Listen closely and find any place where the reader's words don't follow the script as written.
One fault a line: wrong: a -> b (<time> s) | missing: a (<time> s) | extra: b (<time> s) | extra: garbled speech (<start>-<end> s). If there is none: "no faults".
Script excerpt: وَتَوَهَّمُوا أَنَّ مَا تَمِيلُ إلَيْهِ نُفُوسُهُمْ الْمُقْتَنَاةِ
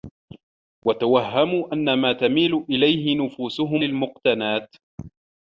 no faults